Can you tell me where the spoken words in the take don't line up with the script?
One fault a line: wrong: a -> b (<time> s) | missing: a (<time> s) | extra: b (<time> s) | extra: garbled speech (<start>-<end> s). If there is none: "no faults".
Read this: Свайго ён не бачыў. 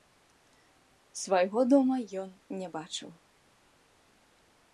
extra: дома (1.7 s)